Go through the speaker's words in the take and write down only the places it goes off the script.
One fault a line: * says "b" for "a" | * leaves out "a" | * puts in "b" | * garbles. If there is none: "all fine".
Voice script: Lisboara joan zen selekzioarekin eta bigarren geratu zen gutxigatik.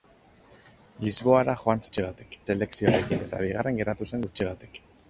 * says "gutxigatik" for "zen"